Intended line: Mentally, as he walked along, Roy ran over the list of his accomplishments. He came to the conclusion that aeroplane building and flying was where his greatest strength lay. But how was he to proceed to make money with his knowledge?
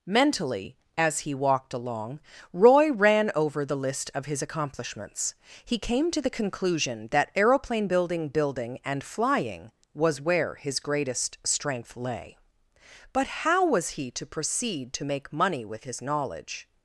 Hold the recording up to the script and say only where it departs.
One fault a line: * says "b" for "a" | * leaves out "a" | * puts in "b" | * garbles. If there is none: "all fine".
* puts in "building"